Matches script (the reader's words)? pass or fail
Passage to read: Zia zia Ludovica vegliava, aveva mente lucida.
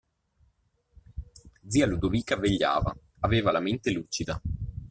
fail